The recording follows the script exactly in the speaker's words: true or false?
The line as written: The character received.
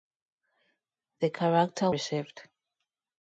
true